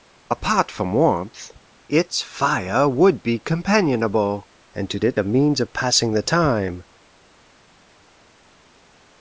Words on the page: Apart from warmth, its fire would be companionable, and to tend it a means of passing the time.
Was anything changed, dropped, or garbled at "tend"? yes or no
yes